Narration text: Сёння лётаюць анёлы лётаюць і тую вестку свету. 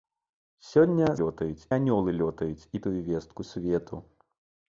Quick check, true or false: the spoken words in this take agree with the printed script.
true